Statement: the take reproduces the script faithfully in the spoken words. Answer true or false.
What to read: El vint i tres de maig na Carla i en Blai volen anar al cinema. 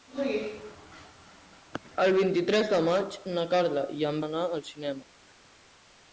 false